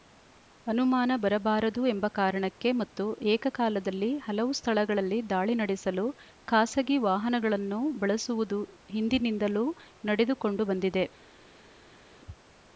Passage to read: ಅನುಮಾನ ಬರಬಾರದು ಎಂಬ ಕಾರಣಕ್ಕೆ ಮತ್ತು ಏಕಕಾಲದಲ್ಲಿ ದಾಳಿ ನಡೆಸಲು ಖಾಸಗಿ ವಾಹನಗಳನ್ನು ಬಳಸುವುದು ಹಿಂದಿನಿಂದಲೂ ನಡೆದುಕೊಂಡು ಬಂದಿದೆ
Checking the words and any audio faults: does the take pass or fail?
fail